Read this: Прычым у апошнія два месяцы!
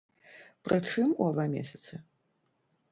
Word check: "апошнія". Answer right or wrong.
wrong